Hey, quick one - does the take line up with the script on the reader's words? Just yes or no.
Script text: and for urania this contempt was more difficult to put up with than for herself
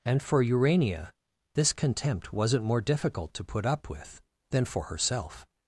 no